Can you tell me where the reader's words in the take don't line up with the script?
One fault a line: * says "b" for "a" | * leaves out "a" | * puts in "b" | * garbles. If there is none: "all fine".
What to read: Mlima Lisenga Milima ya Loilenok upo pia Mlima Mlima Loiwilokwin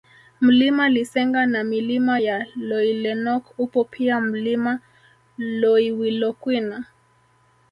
* puts in "na"
* leaves out "Mlima"